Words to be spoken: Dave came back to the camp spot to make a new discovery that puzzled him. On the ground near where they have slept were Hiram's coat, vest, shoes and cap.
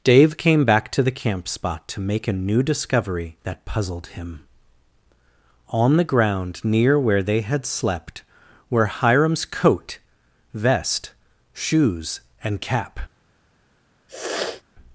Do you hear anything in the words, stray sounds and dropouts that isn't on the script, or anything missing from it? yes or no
yes